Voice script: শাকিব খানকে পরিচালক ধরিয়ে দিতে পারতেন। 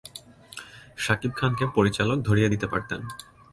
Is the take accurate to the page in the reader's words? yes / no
yes